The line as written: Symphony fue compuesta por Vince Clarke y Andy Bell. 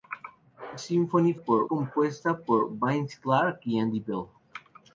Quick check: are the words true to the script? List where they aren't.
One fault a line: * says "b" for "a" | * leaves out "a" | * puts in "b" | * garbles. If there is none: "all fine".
* says "por" for "fue"